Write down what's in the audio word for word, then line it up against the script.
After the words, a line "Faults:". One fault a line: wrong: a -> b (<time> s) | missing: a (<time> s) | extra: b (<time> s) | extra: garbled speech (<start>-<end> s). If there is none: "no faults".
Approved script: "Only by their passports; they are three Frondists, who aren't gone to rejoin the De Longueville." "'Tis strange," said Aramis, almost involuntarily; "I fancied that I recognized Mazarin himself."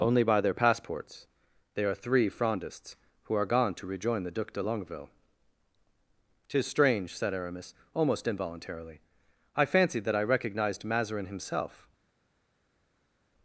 "Only by their passports; they are three Frondists, who are gone to rejoin the Duc de Longueville." "'Tis strange," said Aramis, almost involuntarily; "I fancied that I recognized Mazarin himself."
Faults:
wrong: aren't -> are (3.4 s)
extra: Duc (4.3 s)